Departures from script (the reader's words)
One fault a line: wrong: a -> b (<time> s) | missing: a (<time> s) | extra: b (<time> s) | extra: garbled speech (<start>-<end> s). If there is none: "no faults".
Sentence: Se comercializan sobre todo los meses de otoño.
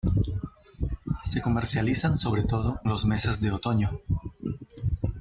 no faults